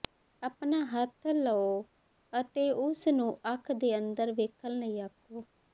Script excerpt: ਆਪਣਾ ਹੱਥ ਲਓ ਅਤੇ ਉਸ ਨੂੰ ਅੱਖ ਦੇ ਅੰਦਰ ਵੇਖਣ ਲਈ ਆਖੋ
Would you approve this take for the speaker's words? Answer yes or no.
yes